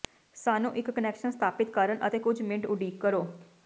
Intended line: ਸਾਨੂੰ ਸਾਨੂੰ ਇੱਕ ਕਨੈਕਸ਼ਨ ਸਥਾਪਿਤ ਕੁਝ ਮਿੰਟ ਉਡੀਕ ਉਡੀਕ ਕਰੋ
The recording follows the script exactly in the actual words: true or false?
false